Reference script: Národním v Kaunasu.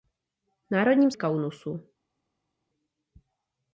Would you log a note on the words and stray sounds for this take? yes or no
no